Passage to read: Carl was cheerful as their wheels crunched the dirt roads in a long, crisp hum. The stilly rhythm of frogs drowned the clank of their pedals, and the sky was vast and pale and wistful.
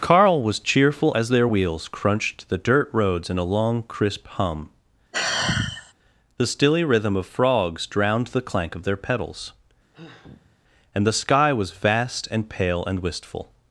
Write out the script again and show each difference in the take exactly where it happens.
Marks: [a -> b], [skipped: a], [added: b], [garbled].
Carl was cheerful as their wheels crunched the dirt roads in a long, crisp hum. The stilly rhythm of frogs drowned the clank of their pedals, and the sky was vast and pale and wistful.